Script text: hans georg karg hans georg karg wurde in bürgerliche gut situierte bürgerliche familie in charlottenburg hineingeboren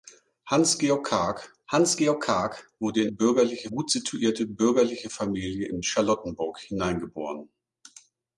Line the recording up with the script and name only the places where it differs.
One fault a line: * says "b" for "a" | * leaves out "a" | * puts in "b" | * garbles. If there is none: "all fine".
all fine